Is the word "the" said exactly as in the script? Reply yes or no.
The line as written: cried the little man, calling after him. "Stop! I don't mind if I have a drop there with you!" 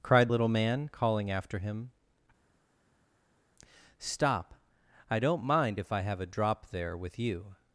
no